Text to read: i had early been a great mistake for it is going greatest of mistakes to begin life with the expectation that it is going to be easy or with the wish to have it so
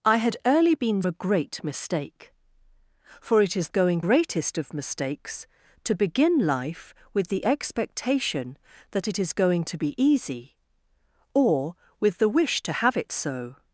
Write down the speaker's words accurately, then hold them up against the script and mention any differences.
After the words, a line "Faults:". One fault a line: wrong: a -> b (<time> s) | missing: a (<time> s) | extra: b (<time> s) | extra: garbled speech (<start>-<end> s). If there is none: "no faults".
i had early been a great mistake for it is going greatest of mistakes to begin life with the expectation that it is going to be easy or with the wish to have it so
Faults:
no faults